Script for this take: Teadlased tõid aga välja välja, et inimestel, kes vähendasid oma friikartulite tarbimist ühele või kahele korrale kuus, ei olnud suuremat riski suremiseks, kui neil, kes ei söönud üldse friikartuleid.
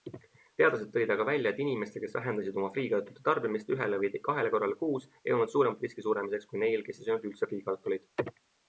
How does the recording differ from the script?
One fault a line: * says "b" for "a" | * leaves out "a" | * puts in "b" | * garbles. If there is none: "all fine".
* leaves out "välja"